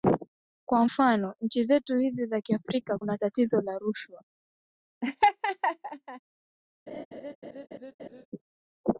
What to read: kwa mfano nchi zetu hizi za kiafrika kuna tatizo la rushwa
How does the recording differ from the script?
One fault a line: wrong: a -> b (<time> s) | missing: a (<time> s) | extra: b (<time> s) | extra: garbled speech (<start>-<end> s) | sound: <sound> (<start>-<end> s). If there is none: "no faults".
sound: laugh (5.0-6.2 s)
sound: laugh (6.9-8.3 s)